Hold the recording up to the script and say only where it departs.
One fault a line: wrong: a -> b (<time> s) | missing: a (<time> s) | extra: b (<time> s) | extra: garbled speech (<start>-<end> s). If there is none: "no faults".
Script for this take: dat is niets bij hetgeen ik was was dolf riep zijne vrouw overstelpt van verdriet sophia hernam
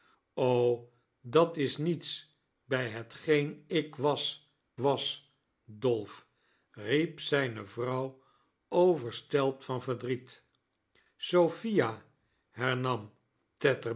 no faults